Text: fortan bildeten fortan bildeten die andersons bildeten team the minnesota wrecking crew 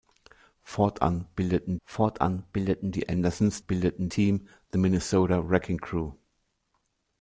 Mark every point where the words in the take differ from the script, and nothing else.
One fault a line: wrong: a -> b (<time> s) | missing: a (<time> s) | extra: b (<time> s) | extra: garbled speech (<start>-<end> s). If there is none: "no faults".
no faults